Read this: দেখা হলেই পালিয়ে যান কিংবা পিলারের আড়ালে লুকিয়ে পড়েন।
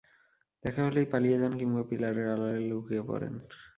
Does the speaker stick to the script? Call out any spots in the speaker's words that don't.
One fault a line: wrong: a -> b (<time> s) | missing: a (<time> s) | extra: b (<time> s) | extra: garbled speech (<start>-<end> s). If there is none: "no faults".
no faults